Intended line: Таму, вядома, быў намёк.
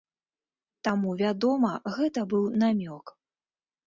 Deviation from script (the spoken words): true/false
true